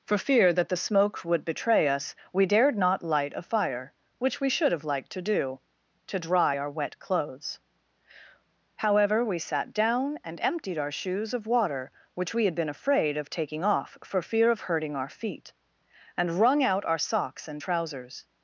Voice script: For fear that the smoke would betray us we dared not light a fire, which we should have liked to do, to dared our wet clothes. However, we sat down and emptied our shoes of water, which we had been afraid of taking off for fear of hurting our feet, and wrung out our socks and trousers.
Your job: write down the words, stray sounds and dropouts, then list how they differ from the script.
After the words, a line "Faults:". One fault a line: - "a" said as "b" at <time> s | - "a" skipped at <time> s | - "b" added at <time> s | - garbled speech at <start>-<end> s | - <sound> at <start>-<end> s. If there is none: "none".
For fear that the smoke would betray us we dared not light a fire, which we should have liked to do, to dry our wet clothes. However, we sat down and emptied our shoes of water, which we had been afraid of taking off for fear of hurting our feet, and wrung out our socks and trousers.
Faults:
- "dared" said as "dry" at 6.2 s